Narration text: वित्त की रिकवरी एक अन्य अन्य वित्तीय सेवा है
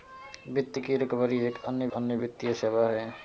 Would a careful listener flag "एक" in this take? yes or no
no